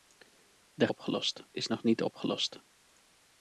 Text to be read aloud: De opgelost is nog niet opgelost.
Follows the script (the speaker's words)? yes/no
yes